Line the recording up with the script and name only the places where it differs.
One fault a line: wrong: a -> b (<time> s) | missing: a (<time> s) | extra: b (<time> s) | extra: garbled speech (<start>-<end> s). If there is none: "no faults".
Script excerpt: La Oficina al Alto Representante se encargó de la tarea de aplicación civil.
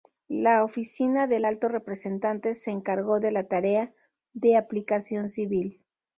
wrong: al -> del (1.3 s)